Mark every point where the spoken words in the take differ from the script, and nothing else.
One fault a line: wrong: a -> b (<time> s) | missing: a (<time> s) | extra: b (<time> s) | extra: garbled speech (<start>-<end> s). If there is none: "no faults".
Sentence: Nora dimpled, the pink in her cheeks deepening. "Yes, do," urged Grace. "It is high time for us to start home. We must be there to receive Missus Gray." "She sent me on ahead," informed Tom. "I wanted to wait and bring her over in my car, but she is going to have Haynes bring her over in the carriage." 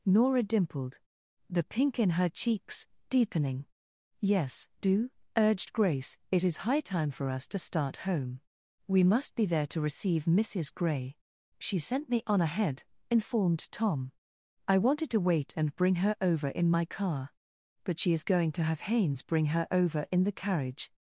no faults